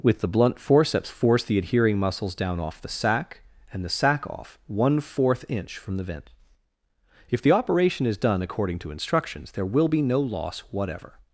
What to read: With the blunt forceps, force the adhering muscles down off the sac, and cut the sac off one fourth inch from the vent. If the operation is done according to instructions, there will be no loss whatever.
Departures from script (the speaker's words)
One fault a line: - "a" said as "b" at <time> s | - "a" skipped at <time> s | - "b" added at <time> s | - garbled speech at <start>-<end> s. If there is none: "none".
- "cut" skipped at 3.9 s